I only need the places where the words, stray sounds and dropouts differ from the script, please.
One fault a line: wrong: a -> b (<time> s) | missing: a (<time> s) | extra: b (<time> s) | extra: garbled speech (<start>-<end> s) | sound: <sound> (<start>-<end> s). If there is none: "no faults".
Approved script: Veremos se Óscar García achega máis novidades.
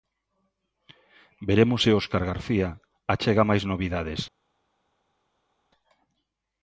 no faults